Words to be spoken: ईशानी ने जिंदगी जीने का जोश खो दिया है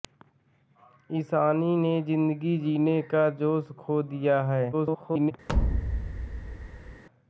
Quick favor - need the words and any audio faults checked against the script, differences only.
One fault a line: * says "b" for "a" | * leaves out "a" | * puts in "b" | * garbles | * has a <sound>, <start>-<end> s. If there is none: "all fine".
* garbles
* has a thud, 5.5-7.0 s